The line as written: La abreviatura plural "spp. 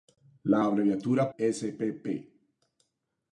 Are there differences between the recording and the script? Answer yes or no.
yes